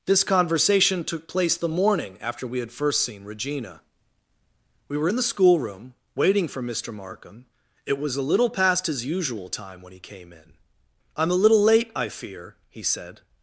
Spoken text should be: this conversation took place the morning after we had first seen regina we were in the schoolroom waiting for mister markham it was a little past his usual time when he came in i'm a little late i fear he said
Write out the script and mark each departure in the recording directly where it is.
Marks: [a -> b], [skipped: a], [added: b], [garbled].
this conversation took place the morning after we had first seen regina we were in the schoolroom waiting for mister markham it was a little past his usual time when he came in i'm a little late i fear he said